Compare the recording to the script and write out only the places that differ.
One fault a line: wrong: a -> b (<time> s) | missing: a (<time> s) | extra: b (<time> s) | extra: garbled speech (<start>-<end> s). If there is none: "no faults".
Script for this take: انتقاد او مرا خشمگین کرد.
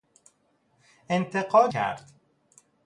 missing: او مرا خشمگین (1.7 s)